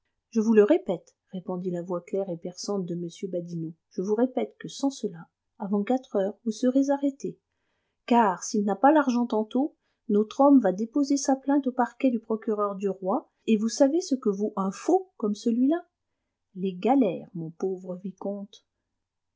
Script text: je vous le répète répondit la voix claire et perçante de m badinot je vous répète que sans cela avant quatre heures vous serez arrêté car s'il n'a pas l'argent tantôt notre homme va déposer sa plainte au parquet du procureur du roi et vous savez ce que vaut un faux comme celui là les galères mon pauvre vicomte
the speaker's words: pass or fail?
pass